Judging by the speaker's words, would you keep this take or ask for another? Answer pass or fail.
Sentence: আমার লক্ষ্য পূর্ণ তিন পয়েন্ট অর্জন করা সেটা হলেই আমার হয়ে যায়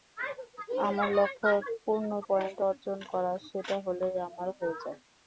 fail